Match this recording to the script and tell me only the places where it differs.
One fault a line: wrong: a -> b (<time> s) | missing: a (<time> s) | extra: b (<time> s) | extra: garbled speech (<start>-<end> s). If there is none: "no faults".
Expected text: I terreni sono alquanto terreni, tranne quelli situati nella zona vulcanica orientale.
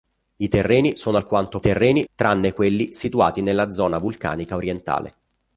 no faults